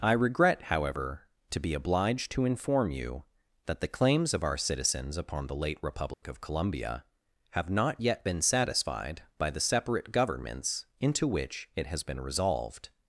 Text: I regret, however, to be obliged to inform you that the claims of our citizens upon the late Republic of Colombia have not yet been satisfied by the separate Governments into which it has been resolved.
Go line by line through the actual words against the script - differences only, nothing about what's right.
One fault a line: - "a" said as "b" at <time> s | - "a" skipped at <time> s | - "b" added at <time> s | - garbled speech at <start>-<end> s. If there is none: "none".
none